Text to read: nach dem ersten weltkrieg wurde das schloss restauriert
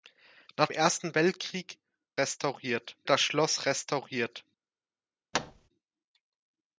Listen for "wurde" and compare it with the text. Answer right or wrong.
wrong